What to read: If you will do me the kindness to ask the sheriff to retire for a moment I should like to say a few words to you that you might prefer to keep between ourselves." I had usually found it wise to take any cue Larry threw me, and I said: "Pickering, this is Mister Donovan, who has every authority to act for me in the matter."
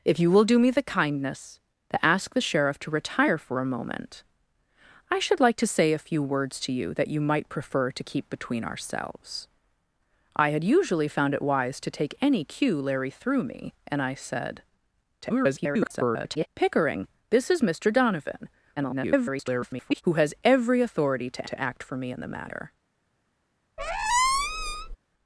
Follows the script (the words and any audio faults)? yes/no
no